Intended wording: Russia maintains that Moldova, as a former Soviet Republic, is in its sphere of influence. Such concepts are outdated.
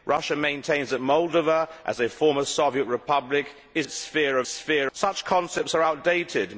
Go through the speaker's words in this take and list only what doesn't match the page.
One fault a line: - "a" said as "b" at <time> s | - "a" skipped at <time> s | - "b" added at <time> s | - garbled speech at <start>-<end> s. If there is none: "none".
- "in" skipped at 3.9 s
- "influence" said as "sphere" at 4.5 s